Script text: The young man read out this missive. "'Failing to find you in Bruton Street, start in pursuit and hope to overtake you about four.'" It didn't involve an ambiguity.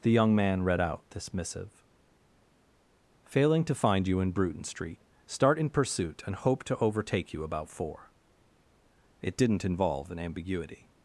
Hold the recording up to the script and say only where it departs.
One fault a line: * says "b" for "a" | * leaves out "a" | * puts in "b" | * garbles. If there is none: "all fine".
all fine